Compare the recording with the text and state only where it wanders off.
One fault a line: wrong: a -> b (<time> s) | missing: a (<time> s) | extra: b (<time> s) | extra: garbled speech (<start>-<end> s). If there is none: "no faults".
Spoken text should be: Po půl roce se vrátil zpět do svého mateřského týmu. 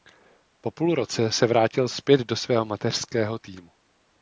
no faults